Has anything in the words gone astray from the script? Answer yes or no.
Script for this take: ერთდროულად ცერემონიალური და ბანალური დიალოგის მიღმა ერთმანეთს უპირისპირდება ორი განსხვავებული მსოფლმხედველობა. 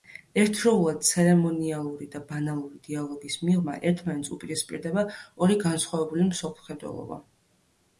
no